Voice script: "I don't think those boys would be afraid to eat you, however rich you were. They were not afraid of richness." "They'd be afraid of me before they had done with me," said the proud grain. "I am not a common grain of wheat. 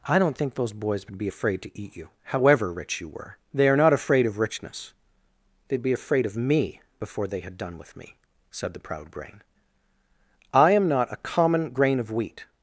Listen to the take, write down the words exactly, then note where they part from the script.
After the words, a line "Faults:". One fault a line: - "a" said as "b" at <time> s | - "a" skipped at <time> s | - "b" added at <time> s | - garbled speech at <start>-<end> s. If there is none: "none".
"I don't think those boys would be afraid to eat you, however rich you were. They are not afraid of richness." "They'd be afraid of me before they had done with me," said the proud grain. "I am not a common grain of wheat.
Faults:
- "were" said as "are" at 3.7 s